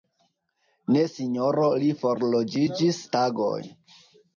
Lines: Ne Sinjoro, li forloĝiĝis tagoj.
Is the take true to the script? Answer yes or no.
yes